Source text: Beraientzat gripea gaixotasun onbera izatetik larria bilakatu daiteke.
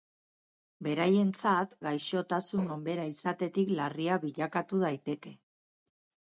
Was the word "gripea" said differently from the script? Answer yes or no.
yes